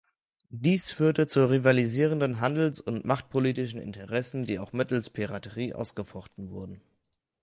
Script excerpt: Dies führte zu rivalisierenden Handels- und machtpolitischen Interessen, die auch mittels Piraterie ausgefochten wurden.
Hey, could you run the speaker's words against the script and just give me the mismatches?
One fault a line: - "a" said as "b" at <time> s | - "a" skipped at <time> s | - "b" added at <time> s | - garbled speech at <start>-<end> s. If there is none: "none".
none